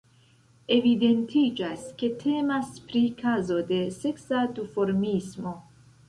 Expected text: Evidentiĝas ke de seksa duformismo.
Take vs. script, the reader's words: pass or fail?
fail